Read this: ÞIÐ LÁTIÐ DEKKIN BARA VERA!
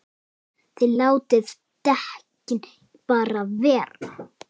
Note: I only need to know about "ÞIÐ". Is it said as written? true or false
true